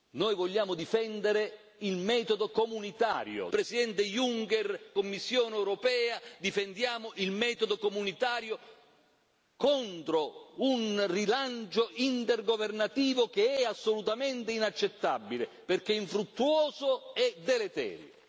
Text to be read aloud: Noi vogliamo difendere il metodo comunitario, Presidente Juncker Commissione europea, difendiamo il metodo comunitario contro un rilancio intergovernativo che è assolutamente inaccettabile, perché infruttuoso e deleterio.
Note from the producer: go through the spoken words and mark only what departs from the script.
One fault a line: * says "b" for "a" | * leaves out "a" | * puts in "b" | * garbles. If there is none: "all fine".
all fine